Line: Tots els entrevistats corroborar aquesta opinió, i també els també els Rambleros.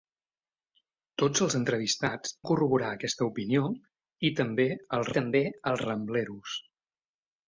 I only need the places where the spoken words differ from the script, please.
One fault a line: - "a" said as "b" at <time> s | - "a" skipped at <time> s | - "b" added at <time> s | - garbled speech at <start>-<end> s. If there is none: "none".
none